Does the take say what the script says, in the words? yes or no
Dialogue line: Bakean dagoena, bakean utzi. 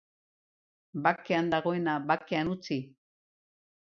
yes